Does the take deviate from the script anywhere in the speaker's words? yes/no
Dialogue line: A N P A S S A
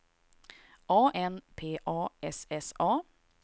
no